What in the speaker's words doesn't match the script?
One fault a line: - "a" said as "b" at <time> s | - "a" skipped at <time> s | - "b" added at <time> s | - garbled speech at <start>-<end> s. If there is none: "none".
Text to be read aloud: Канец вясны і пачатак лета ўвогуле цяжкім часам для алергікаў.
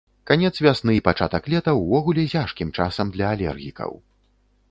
none